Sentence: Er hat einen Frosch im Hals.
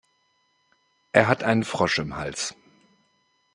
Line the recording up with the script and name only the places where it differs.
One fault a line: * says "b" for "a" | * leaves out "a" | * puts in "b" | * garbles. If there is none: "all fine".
all fine